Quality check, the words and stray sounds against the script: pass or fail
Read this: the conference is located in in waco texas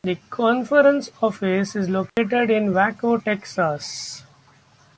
fail